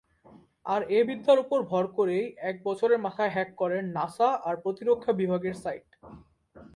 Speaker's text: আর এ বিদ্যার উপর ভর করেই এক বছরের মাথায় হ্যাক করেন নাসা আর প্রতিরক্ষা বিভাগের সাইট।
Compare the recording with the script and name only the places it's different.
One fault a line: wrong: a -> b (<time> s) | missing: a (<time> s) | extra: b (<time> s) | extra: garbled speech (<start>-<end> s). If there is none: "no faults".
no faults